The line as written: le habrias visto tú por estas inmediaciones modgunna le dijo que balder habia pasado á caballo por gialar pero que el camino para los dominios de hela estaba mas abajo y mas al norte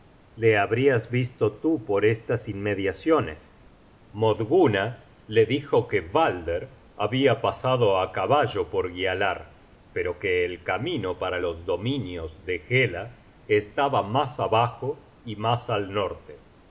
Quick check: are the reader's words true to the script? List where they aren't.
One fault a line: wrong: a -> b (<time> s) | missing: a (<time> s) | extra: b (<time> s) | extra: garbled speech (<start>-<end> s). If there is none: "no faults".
no faults